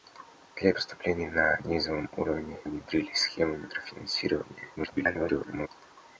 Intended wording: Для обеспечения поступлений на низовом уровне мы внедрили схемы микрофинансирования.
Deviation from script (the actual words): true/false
true